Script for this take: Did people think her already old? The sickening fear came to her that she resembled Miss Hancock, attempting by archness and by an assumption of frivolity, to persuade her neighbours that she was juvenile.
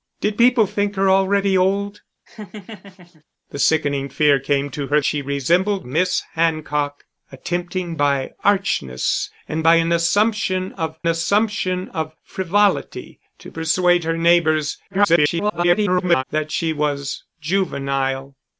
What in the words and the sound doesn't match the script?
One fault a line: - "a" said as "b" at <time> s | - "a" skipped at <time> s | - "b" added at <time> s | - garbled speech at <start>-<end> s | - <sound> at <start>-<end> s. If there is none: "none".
- laugh at 2.3-3.2 s
- "that" skipped at 5.0 s
- "assumption of" added at 11.1 s
- garbled speech at 14.9-16.2 s